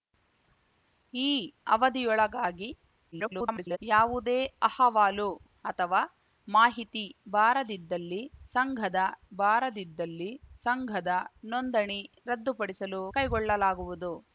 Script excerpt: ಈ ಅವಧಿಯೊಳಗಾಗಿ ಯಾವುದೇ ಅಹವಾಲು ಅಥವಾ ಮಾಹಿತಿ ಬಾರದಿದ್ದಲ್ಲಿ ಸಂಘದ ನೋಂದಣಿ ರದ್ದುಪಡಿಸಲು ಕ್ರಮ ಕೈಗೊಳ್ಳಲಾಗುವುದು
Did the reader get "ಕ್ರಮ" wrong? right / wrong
wrong